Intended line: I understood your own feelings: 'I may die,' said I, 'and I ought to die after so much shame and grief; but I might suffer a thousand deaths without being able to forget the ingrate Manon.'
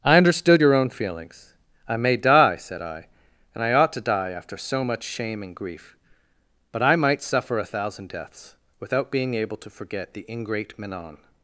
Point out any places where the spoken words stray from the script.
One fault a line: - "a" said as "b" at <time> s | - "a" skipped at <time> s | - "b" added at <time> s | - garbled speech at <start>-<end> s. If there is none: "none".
none